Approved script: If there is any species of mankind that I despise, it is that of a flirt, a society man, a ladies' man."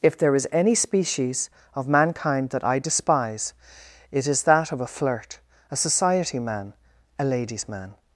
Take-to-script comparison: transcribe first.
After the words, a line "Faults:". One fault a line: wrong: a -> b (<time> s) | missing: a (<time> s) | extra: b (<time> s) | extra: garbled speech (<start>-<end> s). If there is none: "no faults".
If there is any species of mankind that I despise, it is that of a flirt, a society man, a ladies' man."
Faults:
no faults